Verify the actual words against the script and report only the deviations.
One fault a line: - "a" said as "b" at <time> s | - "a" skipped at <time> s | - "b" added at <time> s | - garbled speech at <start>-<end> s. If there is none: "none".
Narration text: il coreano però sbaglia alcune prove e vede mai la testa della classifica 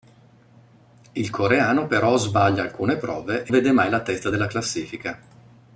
none